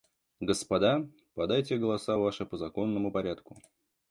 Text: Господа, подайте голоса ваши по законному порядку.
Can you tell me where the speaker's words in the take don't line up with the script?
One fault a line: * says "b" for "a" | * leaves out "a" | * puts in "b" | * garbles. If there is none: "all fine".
all fine